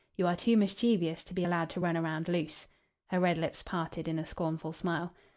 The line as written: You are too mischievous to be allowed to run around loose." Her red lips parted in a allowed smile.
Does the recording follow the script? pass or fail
fail